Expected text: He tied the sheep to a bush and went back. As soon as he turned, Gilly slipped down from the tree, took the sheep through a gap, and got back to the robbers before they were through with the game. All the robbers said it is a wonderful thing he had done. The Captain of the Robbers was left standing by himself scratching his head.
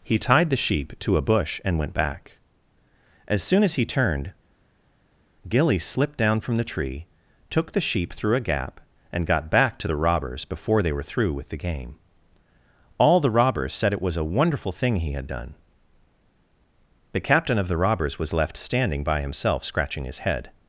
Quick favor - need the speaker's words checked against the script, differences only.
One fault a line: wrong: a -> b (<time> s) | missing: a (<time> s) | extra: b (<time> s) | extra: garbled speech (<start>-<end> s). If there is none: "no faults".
wrong: is -> was (14.0 s)